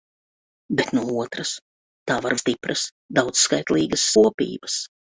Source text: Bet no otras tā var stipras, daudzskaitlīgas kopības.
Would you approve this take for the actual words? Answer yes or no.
yes